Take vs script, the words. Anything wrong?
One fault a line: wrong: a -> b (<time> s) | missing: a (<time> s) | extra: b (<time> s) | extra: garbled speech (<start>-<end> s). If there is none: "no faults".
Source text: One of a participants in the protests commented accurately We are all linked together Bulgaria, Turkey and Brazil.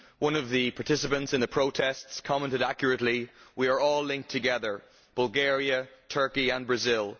wrong: a -> the (0.5 s)